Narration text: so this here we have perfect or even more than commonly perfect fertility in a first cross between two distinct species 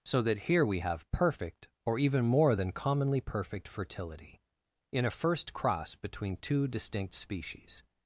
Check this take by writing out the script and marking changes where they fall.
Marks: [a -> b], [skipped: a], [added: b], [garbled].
so [this -> that] here we have perfect or even more than commonly perfect fertility in a first cross between two distinct species